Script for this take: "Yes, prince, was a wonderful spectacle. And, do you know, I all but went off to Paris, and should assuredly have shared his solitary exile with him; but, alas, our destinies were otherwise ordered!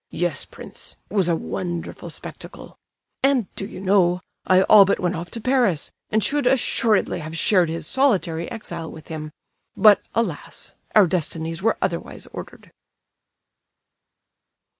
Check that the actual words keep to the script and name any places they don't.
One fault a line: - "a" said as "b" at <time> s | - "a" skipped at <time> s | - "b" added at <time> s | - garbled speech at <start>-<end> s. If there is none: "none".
none